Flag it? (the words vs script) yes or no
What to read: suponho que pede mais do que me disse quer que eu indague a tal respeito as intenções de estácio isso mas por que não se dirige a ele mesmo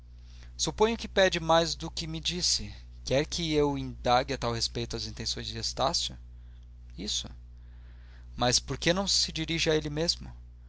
no